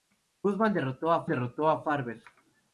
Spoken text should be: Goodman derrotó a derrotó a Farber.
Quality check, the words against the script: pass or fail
pass